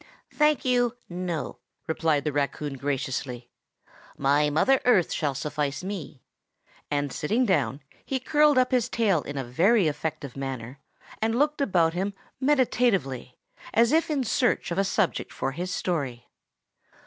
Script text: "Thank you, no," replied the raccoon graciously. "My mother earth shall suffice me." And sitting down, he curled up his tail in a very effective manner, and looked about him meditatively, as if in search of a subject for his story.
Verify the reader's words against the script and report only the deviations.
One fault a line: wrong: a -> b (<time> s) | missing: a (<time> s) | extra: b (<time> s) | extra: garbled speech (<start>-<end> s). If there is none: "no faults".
no faults